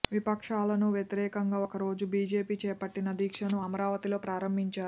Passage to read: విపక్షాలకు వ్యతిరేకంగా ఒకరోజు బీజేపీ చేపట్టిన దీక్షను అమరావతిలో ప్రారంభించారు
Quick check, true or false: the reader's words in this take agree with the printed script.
true